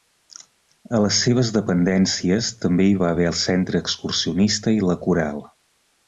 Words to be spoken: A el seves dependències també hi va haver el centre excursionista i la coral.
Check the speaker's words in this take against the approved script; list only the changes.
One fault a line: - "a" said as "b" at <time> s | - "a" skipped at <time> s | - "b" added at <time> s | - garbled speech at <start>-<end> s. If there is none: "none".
- "el" said as "les" at 1.0 s